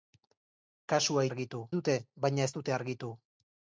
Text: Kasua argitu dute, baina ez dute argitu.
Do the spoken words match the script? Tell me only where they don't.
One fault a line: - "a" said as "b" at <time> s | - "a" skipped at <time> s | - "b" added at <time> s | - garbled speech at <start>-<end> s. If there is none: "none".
none